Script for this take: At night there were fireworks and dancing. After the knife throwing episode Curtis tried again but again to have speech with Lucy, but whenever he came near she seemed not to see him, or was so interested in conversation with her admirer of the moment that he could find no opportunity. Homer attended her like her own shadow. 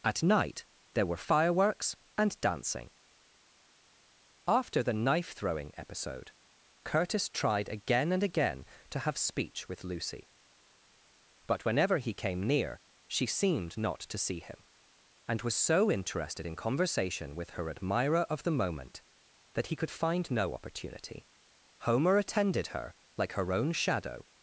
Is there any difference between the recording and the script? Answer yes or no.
yes